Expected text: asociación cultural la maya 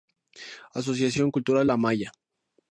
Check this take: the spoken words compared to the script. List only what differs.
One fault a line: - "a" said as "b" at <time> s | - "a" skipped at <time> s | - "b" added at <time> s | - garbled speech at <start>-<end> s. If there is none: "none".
none